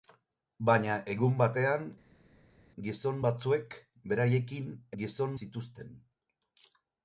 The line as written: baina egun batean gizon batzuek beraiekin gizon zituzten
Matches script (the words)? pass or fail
pass